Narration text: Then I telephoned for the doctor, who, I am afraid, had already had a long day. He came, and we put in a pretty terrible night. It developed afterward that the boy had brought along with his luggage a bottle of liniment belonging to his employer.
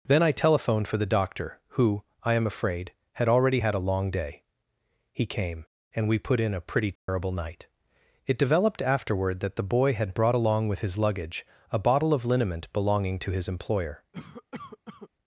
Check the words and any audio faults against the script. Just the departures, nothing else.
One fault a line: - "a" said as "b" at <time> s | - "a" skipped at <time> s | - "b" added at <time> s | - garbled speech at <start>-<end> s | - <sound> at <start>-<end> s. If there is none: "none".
- dropout at 7.0-7.1 s
- cough at 14.1-15.1 s